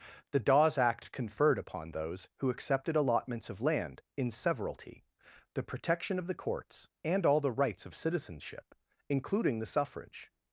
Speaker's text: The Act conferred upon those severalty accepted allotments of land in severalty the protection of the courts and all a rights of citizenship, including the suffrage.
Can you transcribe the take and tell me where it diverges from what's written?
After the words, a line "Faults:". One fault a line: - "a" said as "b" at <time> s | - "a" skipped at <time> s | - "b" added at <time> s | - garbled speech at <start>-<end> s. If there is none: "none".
The Dawes act conferred upon those who accepted allotments of land in severalty the protection of the courts and all the rights of citizenship, including the suffrage.
Faults:
- "Dawes" added at 0.4 s
- "severalty" said as "who" at 2.4 s
- "a" said as "the" at 7.4 s